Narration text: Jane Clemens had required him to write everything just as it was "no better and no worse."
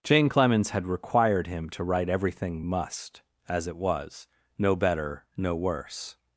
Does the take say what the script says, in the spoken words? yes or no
no